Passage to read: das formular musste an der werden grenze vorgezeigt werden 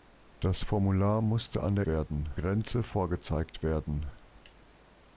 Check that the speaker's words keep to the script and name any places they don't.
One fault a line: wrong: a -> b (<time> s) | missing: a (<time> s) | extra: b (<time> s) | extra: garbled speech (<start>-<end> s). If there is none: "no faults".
no faults